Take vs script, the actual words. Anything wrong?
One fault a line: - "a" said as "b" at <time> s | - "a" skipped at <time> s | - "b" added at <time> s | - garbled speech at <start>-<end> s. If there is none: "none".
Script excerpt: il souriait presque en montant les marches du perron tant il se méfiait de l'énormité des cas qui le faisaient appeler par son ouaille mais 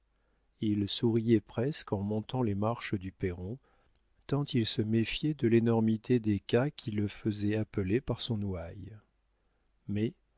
none